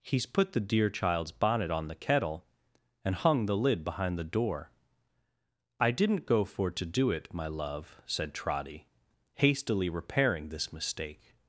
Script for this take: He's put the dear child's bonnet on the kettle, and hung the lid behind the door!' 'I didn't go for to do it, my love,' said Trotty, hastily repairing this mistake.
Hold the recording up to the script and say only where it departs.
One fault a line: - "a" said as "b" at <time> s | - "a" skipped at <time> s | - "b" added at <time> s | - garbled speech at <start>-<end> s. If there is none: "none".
none